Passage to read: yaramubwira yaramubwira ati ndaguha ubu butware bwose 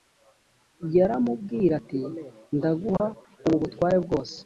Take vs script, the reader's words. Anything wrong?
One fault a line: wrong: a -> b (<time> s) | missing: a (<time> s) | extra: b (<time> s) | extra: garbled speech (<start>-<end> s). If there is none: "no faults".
missing: yaramubwira (1.7 s)